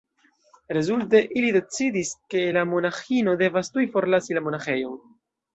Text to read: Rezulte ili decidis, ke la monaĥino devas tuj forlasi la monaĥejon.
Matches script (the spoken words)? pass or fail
pass